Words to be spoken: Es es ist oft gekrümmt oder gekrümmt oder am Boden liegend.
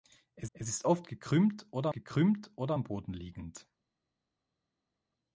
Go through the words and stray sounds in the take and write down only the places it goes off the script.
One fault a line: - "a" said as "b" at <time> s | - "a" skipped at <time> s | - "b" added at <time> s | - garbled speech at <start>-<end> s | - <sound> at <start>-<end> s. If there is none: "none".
none